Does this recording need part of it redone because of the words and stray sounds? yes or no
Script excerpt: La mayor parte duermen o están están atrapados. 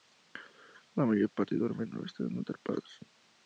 yes